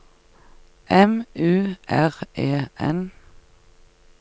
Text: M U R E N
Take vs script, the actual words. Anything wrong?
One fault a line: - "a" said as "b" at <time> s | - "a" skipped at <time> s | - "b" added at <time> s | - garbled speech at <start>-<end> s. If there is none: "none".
none